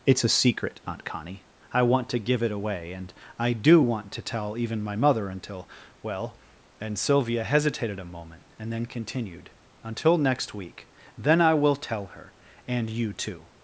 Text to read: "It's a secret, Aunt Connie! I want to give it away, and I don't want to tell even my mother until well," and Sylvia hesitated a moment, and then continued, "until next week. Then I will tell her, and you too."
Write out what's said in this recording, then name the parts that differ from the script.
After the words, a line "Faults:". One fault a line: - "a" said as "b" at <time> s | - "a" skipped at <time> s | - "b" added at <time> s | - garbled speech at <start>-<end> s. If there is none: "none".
"It's a secret, Aunt Connie! I want to give it away, and I do want to tell even my mother until well," and Sylvia hesitated a moment, and then continued, "until next week. Then I will tell her, and you too."
Faults:
- "don't" said as "do" at 3.5 s